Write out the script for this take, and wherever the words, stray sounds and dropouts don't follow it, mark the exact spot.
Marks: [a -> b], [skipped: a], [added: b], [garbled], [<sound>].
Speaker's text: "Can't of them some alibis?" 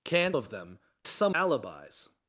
"Can't of them some alibis?"